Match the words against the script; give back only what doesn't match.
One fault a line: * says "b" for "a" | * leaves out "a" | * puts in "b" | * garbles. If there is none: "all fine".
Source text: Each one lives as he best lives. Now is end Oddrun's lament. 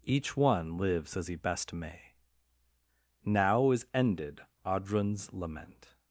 * says "may" for "lives"
* says "ended" for "end"